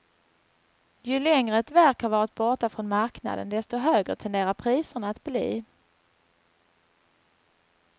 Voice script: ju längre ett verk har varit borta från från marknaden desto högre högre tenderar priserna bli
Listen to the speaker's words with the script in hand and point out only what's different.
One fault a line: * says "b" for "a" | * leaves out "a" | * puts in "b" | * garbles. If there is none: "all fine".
* leaves out "från"
* leaves out "högre"
* puts in "att"